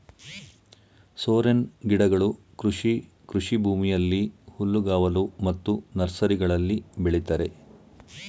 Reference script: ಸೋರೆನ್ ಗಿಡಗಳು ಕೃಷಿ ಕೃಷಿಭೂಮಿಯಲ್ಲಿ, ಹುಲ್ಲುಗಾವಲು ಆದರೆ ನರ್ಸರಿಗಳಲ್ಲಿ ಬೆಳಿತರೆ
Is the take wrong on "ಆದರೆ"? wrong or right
wrong